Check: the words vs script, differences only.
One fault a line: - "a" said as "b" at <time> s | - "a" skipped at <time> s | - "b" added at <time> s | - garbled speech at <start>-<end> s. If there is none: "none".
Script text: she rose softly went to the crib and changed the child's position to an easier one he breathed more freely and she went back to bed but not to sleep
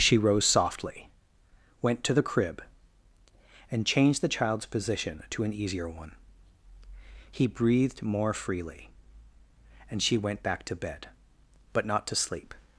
none